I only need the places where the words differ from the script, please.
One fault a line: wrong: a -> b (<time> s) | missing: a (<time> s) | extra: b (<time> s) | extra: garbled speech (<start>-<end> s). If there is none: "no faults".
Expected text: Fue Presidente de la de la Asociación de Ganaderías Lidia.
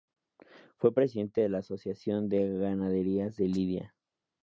missing: de la (1.6 s)
extra: de (3.4 s)